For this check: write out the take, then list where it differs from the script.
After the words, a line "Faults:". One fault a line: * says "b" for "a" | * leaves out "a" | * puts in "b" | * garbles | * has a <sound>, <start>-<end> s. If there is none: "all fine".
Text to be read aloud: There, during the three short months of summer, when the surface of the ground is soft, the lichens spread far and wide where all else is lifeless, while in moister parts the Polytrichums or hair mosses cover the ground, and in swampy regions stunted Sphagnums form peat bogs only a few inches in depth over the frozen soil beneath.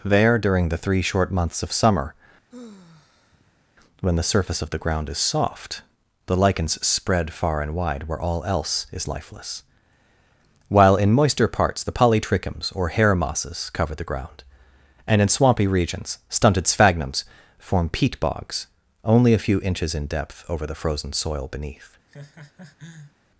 There, during the three short months of summer, when the surface of the ground is soft, the lichens spread far and wide where all else is lifeless, while in moister parts the Polytrichums or hair mosses cover the ground, and in swampy regions stunted Sphagnums form peat bogs only a few inches in depth over the frozen soil beneath.
Faults:
* has a sigh, 2.5-3.6 s
* has a laugh, 22.1-23.1 s